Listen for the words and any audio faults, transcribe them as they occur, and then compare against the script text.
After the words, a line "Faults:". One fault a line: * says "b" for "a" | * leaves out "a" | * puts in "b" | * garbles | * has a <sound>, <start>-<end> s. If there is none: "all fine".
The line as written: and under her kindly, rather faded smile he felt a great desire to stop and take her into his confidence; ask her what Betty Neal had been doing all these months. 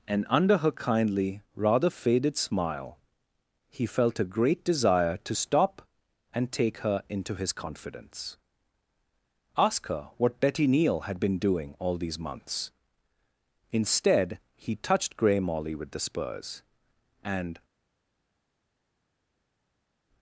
and under her kindly, rather faded smile he felt a great desire to stop and take her into his confidence; ask her what Betty Neal had been doing all these months. Instead, he touched Grey Molly with the spurs, and
Faults:
* puts in "Instead he touched Grey Molly with the spurs and"